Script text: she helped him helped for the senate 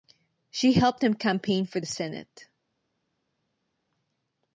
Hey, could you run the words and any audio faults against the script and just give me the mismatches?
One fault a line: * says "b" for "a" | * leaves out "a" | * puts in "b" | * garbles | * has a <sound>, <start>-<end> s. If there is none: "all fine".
* says "campaign" for "helped"